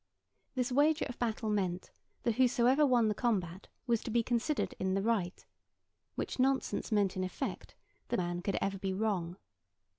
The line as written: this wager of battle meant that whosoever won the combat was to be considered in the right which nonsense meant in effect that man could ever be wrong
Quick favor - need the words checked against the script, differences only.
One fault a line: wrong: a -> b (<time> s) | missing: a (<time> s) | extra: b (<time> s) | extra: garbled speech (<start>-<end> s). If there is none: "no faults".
no faults